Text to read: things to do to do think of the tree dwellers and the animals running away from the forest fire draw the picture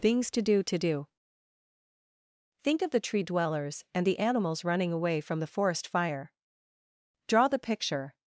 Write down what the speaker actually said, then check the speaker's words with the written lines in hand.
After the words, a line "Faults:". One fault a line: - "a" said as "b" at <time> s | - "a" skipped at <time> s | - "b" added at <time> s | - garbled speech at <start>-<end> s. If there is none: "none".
things to do to do think of the tree dwellers and the animals running away from the forest fire draw the picture
Faults:
none